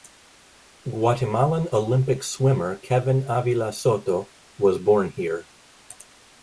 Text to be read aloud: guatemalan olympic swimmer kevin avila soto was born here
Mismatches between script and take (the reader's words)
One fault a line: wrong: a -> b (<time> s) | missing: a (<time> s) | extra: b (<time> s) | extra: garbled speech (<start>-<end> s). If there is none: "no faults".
no faults